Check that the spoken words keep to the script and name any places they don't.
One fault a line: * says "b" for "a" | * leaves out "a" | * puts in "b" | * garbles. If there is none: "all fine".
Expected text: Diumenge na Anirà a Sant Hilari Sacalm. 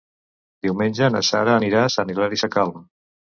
* puts in "Sara"